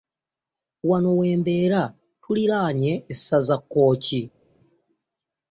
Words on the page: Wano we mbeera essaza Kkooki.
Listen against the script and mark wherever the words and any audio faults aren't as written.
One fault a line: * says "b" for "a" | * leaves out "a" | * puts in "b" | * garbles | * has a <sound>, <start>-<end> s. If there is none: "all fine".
* puts in "tuliraanye"